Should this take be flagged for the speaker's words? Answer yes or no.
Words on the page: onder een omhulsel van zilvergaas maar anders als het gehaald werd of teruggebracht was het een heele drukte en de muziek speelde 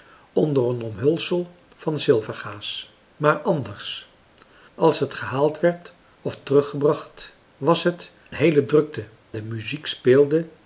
yes